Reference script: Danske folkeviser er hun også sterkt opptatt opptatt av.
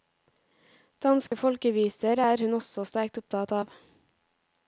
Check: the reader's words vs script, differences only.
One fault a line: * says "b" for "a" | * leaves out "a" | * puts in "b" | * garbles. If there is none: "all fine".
* leaves out "opptatt"